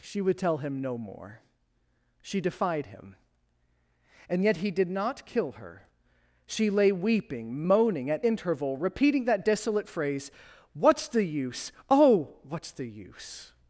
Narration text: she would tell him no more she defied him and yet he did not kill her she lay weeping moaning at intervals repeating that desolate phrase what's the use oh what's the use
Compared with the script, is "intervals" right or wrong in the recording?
wrong